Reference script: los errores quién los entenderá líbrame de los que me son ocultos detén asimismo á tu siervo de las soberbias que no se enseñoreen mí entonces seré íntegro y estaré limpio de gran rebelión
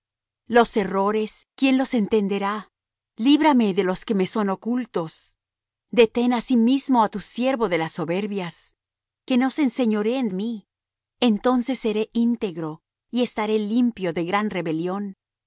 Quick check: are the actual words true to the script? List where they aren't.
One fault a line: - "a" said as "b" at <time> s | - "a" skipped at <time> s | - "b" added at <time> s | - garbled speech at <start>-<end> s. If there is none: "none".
none